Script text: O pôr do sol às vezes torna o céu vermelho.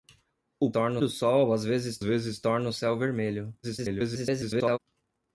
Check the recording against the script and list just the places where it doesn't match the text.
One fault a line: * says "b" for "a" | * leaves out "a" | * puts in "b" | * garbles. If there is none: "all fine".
* says "torna" for "pôr"
* puts in "vezes"
* garbles